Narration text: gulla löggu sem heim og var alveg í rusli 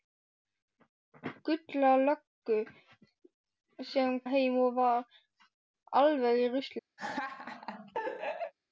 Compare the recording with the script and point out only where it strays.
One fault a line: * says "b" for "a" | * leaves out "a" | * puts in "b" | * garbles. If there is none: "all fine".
all fine